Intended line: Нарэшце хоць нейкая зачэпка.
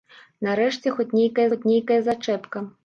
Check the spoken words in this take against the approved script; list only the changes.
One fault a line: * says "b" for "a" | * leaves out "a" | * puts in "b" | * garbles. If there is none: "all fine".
* puts in "хоць нейкая"